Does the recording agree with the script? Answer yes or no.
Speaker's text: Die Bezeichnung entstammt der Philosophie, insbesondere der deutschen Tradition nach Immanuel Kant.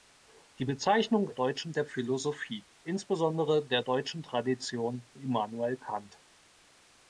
no